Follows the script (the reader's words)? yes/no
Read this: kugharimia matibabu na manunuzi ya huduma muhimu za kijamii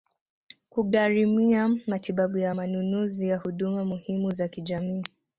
yes